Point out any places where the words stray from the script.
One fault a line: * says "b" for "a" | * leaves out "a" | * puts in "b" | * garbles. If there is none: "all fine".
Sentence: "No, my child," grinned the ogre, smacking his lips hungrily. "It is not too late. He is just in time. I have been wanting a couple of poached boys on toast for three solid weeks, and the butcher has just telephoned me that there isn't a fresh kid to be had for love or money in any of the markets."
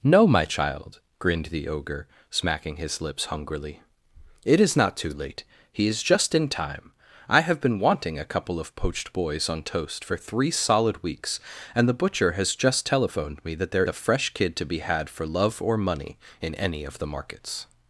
* leaves out "isn't"